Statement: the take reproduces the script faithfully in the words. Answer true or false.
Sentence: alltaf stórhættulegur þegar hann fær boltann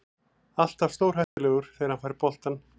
true